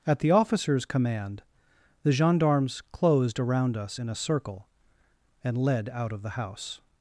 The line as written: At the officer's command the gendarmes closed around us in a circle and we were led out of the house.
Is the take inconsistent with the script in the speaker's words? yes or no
yes